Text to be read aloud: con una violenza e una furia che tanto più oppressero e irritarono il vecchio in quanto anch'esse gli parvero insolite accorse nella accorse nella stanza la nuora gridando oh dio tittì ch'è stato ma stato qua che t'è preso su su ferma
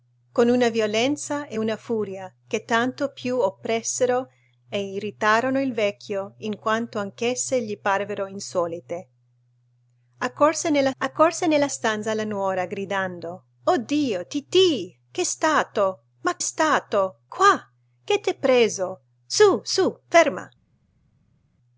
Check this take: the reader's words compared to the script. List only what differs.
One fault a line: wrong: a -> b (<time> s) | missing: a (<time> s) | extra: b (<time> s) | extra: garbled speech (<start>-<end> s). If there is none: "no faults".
no faults